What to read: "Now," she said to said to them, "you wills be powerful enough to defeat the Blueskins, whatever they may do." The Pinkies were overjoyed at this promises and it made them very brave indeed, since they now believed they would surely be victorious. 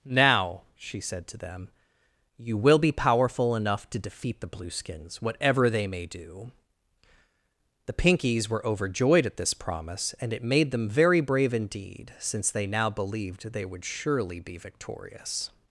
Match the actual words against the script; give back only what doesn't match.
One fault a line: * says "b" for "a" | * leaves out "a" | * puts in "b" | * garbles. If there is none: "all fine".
* leaves out "said to"
* says "will" for "wills"
* says "promise" for "promises"